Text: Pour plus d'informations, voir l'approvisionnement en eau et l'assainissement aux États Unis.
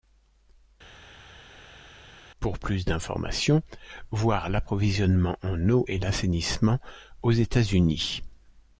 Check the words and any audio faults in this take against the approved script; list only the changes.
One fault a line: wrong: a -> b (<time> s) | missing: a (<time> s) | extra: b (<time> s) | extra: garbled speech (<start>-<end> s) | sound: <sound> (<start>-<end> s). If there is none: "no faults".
no faults